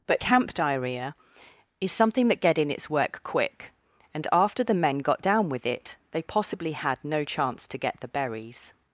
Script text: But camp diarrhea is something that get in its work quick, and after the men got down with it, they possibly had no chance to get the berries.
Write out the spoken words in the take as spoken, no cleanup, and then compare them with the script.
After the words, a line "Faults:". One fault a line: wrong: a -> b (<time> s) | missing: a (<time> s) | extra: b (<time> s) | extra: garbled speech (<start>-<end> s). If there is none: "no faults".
But camp diarrhea is something that get in its work quick, and after the men got down with it, they possibly had no chance to get the berries.
Faults:
no faults